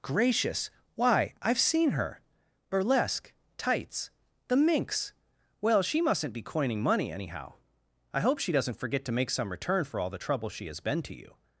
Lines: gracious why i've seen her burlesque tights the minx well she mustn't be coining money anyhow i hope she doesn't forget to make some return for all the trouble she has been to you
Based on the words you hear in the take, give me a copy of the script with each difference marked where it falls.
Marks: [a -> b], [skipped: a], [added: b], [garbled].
gracious why i've seen her burlesque tights the minx well she mustn't be coining money anyhow i hope she doesn't forget to make some return for all the trouble she has been to you